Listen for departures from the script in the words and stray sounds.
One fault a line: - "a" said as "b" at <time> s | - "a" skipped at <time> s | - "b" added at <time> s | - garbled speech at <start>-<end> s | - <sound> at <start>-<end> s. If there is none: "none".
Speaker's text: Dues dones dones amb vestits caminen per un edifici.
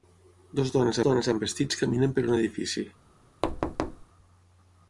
- thud at 3.4-4.1 s